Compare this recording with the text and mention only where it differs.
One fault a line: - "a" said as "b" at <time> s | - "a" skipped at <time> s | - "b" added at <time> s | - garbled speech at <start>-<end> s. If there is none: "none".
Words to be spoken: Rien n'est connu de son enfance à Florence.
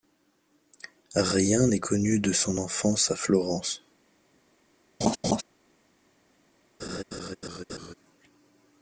none